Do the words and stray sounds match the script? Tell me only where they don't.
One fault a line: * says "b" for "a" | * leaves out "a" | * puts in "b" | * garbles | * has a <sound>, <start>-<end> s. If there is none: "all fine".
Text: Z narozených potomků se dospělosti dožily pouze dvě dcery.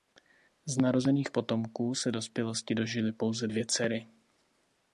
all fine